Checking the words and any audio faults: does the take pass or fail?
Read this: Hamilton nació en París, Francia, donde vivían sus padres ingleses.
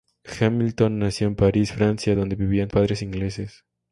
fail